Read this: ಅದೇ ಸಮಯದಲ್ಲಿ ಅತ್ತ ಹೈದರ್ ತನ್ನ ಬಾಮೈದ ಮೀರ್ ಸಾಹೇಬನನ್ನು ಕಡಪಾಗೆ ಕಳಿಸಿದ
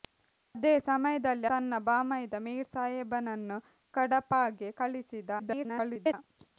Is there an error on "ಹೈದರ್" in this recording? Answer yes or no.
yes